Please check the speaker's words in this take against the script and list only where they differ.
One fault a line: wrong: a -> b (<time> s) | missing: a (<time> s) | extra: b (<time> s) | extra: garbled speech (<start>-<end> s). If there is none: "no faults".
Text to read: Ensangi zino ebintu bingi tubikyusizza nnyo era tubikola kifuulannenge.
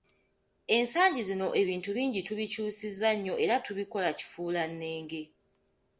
no faults